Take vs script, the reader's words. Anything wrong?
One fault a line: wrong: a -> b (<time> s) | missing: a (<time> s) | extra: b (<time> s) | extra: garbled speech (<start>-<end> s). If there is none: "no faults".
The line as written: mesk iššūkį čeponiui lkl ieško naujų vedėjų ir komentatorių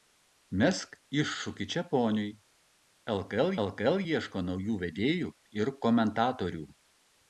extra: lkl (3.6 s)